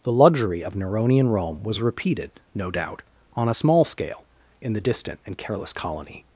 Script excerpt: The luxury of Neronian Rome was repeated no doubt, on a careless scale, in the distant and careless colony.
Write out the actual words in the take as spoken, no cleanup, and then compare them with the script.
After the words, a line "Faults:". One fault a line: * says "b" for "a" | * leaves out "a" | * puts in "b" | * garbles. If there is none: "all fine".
The luxury of Neronian Rome was repeated no doubt, on a small scale, in the distant and careless colony.
Faults:
* says "small" for "careless"